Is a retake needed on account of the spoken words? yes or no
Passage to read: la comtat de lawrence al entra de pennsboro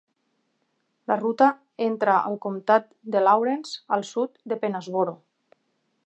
yes